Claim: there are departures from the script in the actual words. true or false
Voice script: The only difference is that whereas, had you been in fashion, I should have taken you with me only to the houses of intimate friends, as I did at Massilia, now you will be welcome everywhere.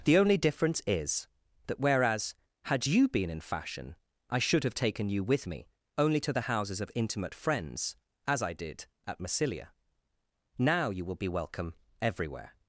false